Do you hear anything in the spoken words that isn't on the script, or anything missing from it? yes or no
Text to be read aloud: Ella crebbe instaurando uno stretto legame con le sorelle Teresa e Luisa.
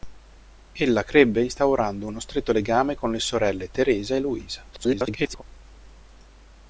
yes